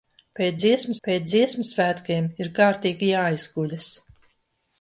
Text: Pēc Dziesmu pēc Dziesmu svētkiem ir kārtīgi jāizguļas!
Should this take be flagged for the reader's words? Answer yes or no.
no